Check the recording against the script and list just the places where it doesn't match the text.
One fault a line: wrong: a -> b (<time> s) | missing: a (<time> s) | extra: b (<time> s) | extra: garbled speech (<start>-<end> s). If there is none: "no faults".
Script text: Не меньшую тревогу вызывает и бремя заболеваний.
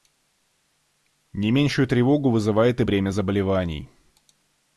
no faults